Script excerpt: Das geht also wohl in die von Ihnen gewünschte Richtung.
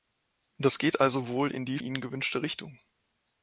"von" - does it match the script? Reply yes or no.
no